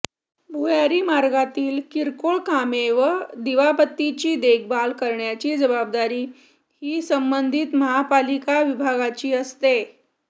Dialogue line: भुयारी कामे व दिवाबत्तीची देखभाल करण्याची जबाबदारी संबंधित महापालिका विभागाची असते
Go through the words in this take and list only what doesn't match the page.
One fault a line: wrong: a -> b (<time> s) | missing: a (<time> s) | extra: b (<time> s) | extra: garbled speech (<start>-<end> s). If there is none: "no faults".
extra: मार्गातील किरकोळ (1.0 s)
extra: ही (6.8 s)